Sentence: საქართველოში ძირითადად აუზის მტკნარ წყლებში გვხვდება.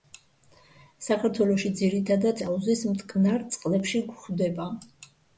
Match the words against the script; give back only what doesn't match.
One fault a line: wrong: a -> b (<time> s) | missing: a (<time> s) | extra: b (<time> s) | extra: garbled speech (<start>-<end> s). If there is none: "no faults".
no faults